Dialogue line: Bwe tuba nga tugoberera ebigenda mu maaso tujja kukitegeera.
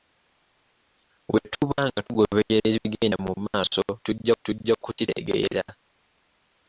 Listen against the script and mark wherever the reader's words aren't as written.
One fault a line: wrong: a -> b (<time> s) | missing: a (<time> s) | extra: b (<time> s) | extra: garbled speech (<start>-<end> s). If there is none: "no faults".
extra: tujja (4.4 s)